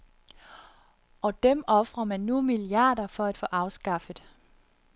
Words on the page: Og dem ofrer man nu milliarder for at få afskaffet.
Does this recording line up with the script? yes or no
yes